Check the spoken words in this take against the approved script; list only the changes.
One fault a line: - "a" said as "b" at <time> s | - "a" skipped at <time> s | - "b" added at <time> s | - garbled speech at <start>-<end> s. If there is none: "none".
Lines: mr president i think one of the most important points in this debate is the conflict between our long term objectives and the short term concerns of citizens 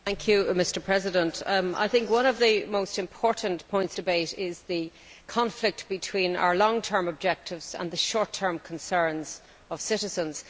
- "in this" skipped at 4.0 s